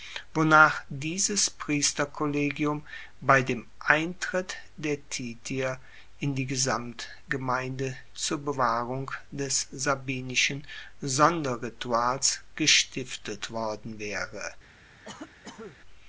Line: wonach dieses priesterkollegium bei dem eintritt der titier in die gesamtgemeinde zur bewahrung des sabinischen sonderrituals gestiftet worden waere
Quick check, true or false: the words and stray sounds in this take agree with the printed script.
false